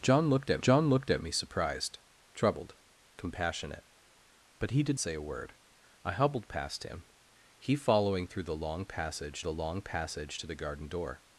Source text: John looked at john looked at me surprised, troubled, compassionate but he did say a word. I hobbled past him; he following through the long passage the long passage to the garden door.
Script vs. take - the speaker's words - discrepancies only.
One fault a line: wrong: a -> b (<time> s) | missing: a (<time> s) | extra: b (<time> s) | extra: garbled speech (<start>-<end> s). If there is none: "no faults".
no faults